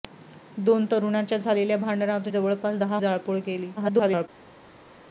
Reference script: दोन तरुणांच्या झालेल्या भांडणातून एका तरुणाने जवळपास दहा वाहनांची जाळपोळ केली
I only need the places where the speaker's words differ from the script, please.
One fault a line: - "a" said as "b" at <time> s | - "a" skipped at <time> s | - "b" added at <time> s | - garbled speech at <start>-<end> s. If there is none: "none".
- "एका तरुणाने" skipped at 2.3 s
- "वाहनांची" skipped at 3.0 s
- garbled speech at 3.8-4.3 s